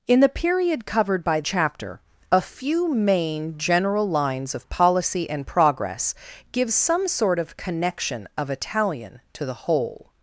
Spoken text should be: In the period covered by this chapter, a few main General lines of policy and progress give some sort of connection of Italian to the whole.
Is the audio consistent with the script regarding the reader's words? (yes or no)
no